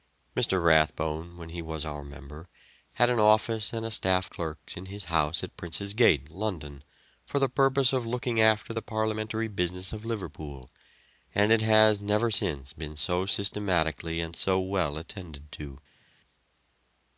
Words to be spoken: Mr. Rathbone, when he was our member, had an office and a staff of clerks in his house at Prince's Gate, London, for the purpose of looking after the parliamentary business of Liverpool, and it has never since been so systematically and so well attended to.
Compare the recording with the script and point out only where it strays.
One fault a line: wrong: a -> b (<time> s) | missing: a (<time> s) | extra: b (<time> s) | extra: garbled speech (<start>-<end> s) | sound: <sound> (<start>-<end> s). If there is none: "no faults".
missing: of (4.3 s)